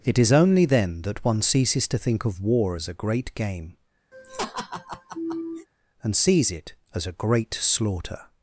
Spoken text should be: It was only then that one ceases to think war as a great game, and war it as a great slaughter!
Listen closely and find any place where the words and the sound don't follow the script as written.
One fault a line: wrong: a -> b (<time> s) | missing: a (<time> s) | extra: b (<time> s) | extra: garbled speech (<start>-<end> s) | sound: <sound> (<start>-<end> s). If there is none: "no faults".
wrong: was -> is (0.2 s)
extra: of (2.2 s)
sound: laugh (4.1-5.7 s)
wrong: war -> sees (6.1 s)